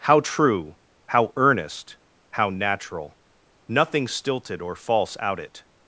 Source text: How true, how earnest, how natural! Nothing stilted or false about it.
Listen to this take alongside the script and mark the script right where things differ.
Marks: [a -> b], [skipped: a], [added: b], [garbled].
How true, how earnest, how natural! Nothing stilted or false [about -> out] it.